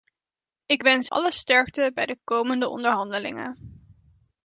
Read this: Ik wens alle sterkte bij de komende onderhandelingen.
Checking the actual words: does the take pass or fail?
pass